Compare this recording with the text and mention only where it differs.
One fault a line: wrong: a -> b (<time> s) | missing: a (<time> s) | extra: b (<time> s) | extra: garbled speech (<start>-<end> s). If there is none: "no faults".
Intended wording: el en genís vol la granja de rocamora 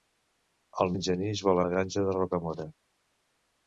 no faults